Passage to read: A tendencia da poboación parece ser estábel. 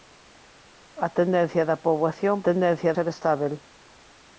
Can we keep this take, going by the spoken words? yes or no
no